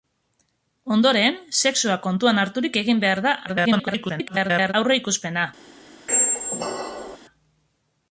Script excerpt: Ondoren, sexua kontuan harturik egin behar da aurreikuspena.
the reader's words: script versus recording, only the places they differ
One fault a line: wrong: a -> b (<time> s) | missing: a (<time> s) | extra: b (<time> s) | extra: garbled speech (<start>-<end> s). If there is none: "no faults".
extra: garbled speech (3.5-4.7 s)